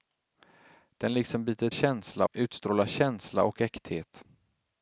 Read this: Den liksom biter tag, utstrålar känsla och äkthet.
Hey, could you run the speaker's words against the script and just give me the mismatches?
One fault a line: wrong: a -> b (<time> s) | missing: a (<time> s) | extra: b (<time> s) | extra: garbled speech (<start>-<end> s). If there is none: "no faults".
wrong: tag -> känsla (1.7 s)